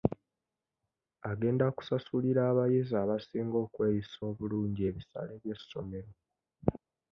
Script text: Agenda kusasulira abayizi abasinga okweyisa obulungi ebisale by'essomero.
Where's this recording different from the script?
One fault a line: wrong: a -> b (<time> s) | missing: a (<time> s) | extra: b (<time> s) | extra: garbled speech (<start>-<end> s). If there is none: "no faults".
no faults